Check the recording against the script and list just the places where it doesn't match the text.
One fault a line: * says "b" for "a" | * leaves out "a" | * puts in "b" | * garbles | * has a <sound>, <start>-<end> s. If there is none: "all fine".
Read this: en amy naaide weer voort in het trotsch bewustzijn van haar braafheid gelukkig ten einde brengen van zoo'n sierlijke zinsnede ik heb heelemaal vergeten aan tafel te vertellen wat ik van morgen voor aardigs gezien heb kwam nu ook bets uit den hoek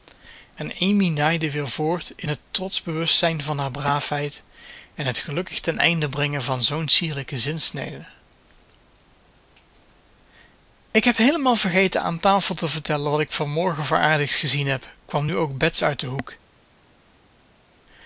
* puts in "en het"